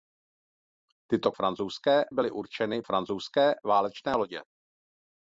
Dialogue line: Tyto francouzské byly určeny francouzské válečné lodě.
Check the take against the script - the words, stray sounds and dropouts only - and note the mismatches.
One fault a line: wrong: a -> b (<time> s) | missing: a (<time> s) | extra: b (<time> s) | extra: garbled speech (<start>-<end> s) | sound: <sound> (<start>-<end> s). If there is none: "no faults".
no faults